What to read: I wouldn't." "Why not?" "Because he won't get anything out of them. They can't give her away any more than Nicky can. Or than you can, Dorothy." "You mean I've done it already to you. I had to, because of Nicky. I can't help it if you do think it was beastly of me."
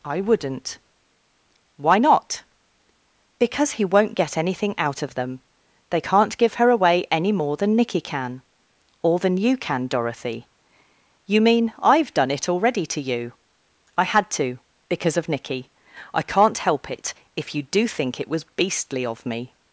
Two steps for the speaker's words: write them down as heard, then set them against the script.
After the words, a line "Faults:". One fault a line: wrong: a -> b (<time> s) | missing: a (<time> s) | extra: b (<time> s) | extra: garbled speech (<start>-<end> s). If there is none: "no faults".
I wouldn't." "Why not?" "Because he won't get anything out of them. They can't give her away any more than Nicky can. Or than you can, Dorothy." "You mean I've done it already to you. I had to, because of Nicky. I can't help it if you do think it was beastly of me."
Faults:
no faults